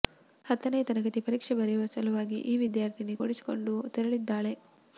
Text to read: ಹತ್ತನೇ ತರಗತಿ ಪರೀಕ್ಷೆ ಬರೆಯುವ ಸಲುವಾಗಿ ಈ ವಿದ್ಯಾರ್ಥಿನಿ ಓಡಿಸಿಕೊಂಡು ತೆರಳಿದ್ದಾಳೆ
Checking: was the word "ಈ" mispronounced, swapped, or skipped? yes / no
no